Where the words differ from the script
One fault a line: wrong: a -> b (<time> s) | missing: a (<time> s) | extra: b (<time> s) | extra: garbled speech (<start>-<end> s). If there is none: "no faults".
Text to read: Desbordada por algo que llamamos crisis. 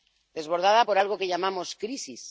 no faults